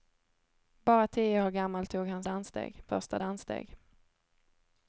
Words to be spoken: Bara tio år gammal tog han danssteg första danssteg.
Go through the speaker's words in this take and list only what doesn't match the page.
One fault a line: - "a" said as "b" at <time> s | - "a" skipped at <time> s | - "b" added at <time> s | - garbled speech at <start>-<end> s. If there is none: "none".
none